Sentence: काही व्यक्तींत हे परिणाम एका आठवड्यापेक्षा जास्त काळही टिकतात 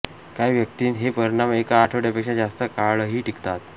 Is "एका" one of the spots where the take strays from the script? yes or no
no